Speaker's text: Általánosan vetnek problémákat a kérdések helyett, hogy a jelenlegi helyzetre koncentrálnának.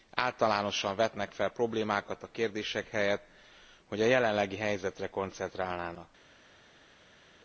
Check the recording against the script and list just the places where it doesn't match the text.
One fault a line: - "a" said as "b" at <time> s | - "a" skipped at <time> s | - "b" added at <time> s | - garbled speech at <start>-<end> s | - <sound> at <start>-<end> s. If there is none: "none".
- "fel" added at 1.3 s